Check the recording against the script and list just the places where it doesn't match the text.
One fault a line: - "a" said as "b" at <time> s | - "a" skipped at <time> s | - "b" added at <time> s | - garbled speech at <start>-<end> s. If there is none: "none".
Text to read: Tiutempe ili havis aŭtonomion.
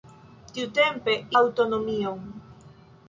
- "ili havis" skipped at 1.1 s